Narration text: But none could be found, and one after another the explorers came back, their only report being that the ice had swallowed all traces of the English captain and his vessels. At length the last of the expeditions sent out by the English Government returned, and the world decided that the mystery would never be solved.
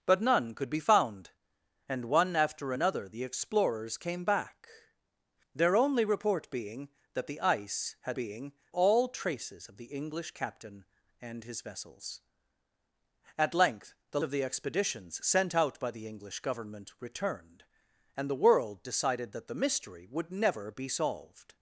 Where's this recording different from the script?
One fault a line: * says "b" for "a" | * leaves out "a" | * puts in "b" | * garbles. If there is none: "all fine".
* says "being" for "swallowed"
* leaves out "last"